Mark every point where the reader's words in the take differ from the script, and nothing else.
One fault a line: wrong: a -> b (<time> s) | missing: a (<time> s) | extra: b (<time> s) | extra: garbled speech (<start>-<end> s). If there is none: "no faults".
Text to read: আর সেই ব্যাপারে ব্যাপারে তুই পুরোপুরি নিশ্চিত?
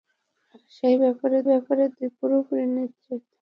no faults